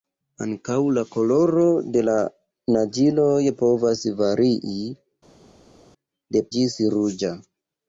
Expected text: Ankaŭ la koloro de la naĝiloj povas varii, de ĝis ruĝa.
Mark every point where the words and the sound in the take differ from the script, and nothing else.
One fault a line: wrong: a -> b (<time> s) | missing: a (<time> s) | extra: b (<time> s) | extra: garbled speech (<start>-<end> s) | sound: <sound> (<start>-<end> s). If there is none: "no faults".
no faults